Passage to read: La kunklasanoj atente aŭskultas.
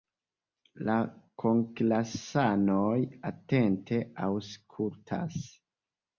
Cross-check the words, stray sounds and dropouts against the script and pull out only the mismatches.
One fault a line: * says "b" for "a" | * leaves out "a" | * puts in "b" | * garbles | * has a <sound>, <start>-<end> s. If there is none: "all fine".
all fine